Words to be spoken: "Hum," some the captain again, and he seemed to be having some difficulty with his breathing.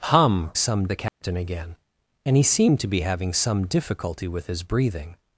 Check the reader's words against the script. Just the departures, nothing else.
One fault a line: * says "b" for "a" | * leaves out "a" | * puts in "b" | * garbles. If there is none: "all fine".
all fine